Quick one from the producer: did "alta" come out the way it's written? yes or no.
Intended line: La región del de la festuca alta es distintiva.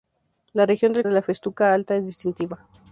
yes